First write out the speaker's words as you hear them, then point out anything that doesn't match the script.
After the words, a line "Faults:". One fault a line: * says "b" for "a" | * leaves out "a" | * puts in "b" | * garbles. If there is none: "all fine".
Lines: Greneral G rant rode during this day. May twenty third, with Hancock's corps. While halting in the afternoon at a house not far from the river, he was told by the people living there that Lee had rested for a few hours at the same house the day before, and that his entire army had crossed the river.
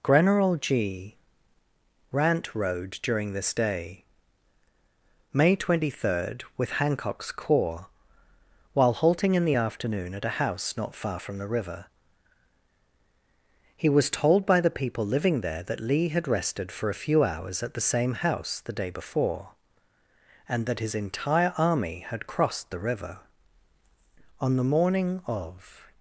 Greneral G rant rode during this day. May twenty third, with Hancock's corps. While halting in the afternoon at a house not far from the river, he was told by the people living there that Lee had rested for a few hours at the same house the day before, and that his entire army had crossed the river. On the morning of
Faults:
* puts in "On the morning of"